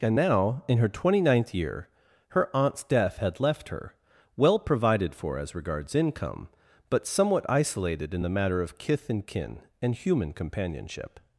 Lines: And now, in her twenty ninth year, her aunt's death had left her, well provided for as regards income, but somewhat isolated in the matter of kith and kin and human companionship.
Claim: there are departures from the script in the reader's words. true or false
false